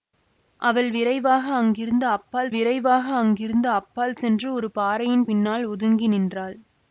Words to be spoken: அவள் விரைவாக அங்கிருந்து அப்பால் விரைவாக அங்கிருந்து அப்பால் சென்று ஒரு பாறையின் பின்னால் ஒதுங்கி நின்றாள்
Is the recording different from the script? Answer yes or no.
no